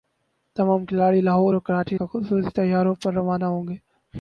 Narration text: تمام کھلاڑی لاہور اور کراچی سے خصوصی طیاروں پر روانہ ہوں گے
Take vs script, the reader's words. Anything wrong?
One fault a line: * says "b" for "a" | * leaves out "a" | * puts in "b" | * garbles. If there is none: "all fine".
* leaves out "سے"